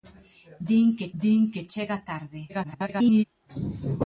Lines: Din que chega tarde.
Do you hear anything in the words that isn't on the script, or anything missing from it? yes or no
yes